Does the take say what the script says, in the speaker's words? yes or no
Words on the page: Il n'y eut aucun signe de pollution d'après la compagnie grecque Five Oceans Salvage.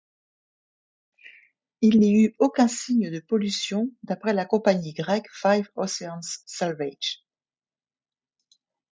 yes